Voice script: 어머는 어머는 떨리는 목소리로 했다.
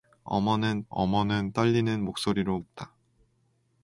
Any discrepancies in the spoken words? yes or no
no